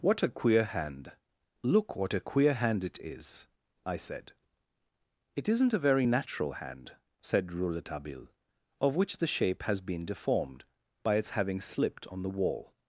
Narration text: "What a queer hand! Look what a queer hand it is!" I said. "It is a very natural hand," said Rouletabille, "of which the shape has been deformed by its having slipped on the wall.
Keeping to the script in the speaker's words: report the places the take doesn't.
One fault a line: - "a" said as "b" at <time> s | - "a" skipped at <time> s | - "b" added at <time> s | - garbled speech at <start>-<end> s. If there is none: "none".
- "is" said as "isn't" at 5.5 s